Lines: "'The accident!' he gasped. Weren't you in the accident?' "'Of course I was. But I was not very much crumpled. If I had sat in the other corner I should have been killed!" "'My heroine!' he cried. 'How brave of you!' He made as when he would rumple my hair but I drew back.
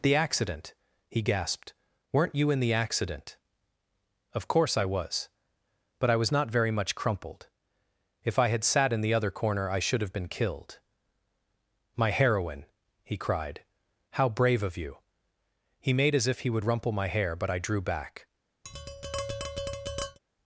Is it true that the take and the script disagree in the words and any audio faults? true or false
true